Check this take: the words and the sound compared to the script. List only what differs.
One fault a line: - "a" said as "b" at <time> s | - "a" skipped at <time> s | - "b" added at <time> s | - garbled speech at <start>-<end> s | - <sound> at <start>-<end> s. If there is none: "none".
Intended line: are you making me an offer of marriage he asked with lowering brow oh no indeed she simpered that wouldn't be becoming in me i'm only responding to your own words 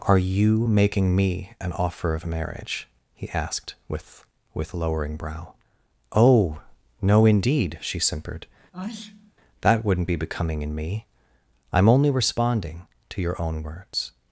- "with" added at 4.5 s
- sneeze at 8.7-9.3 s